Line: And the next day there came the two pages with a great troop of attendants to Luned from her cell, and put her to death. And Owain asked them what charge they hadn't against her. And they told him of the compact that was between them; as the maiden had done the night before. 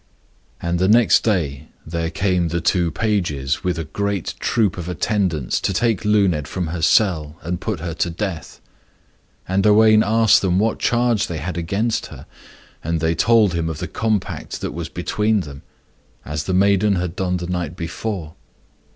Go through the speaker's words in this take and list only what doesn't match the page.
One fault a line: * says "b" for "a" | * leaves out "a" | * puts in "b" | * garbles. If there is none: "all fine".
* puts in "take"
* says "had" for "hadn't"